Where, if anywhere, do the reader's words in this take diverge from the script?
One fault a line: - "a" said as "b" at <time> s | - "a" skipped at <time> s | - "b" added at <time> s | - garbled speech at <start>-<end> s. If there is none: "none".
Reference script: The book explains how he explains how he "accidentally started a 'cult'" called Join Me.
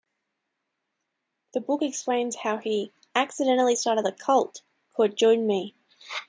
- "explains how he" skipped at 2.9 s